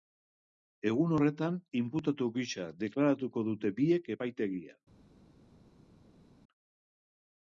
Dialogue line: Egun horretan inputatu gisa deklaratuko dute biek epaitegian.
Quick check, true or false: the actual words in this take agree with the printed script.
true